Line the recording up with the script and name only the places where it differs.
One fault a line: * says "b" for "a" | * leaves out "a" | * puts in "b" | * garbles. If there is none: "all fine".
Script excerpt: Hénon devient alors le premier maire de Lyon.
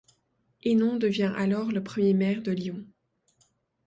all fine